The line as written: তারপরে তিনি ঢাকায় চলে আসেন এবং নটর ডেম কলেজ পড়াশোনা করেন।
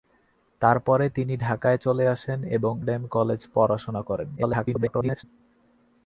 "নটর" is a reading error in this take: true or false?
true